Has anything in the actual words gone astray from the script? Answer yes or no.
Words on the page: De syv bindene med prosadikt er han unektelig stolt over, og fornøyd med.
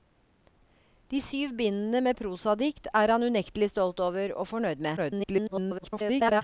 yes